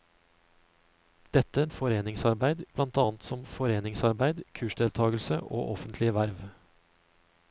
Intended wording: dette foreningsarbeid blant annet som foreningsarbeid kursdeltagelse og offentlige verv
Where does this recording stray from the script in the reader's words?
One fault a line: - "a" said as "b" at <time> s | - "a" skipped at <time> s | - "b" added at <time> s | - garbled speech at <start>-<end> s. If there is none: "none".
none